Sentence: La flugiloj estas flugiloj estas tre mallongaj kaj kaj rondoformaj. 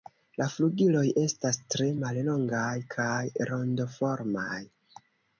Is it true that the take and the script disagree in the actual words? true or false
true